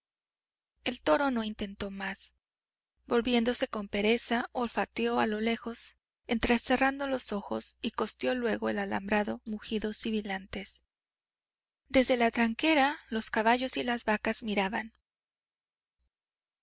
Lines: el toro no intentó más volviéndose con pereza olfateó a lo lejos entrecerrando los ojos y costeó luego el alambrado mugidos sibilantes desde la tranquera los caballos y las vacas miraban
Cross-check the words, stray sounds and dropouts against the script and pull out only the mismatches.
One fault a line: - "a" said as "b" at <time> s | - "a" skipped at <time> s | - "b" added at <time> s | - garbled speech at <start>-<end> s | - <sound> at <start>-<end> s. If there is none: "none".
none